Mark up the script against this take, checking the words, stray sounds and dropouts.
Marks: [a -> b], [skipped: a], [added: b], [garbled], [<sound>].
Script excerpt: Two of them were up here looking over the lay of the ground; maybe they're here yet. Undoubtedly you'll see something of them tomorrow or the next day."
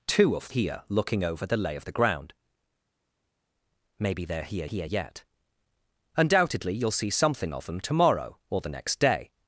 Two of [skipped: them were up] here looking over the lay of the ground; maybe they're here [added: here] yet. Undoubtedly you'll see something of them tomorrow or the next day."